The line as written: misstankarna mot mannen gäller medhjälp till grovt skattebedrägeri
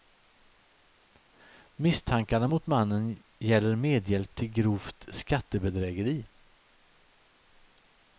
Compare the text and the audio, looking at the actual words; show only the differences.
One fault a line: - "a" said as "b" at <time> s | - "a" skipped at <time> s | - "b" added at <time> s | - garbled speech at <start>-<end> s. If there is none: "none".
none